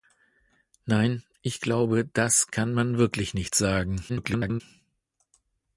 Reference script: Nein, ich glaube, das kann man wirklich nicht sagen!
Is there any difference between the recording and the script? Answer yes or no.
yes